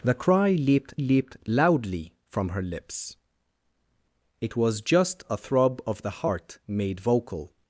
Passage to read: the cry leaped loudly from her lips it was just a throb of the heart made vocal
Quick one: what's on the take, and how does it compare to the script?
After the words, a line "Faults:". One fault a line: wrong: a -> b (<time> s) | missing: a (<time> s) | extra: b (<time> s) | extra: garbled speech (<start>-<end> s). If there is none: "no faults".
the cry leaped leaped loudly from her lips it was just a throb of the heart made vocal
Faults:
extra: leaped (0.9 s)